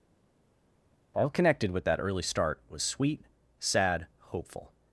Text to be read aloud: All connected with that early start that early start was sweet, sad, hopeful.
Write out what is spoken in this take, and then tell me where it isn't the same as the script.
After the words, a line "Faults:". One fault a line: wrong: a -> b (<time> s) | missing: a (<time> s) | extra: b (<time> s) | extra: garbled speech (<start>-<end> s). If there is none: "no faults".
All connected with that early start was sweet, sad, hopeful.
Faults:
missing: that early start (2.6 s)